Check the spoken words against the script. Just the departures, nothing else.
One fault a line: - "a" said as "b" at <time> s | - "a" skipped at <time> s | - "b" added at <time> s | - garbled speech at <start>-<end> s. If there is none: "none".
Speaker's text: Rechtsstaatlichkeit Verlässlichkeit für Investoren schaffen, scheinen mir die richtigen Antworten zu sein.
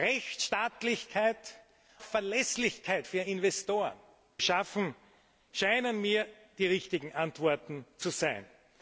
none